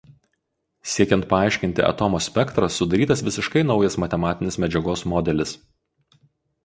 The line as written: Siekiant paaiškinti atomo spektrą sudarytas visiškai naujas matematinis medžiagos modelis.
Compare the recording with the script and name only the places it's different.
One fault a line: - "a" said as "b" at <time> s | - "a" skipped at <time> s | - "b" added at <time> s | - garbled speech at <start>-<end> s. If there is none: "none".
none